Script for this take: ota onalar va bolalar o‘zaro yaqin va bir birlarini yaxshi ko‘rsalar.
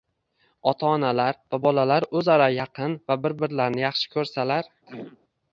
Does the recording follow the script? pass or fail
pass